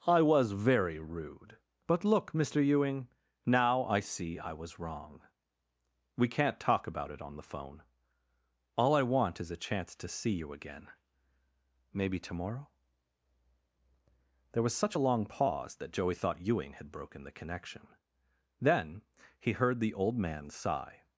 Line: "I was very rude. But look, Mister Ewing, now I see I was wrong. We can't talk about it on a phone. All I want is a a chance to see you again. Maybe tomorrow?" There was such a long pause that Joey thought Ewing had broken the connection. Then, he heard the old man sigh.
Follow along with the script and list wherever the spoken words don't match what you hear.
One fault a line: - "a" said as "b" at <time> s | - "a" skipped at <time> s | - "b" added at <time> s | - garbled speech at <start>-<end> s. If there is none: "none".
- "a" said as "the" at 7.3 s
- "a" skipped at 9.7 s